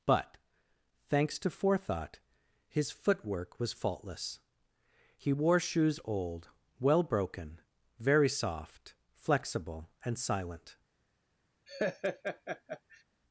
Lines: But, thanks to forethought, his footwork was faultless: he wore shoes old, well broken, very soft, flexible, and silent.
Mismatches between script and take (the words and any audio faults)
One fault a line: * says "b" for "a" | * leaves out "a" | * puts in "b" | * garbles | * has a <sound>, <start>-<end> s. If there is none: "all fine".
* has a laugh, 11.7-13.0 s